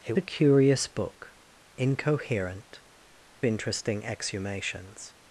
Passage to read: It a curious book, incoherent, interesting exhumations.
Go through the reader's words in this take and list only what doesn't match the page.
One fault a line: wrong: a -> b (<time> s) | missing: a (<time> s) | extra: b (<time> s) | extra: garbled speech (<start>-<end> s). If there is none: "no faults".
no faults